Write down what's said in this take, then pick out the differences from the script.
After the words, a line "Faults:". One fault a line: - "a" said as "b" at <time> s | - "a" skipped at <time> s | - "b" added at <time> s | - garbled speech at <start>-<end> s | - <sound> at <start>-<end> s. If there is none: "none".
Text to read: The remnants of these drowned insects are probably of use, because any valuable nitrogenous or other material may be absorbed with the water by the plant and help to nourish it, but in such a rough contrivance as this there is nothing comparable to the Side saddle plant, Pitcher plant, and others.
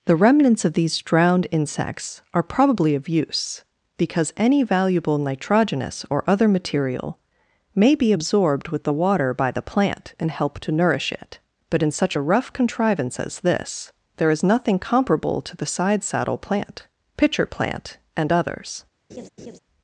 The remnants of these drowned insects are probably of use, because any valuable nitrogenous or other material may be absorbed with the water by the plant and help to nourish it, but in such a rough contrivance as this there is nothing comparable to the Side saddle plant, Pitcher plant, and others.
Faults:
- laugh at 19.1-19.6 s